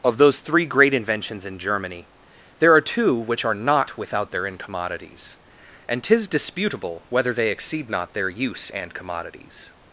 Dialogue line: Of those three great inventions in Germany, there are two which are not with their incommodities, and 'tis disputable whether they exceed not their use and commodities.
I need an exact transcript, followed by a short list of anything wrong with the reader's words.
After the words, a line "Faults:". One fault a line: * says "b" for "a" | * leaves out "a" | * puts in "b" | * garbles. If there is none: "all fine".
Of those three great inventions in Germany, there are two which are not without their incommodities, and 'tis disputable whether they exceed not their use and commodities.
Faults:
* says "without" for "with"